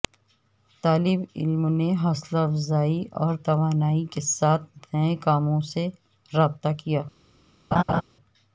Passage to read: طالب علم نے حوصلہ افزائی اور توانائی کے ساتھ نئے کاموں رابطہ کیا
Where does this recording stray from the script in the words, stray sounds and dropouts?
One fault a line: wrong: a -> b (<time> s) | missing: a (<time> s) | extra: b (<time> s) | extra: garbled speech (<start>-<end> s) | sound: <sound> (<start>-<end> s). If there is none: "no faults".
extra: سے (5.7 s)
sound: laugh (7.7-8.0 s)